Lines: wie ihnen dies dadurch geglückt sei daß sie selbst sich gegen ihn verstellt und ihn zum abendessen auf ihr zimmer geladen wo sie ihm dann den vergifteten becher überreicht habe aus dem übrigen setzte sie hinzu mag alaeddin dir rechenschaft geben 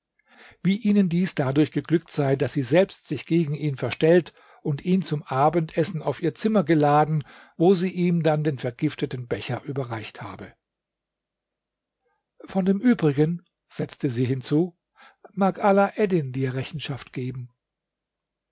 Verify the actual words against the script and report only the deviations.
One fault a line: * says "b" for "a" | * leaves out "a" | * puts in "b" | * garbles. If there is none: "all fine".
* says "von" for "aus"